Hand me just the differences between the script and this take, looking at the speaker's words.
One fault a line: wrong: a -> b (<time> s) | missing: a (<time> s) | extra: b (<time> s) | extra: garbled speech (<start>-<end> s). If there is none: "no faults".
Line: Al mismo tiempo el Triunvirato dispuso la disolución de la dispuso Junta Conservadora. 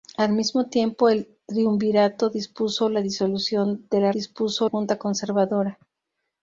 no faults